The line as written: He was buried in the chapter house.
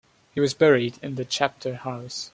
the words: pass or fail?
pass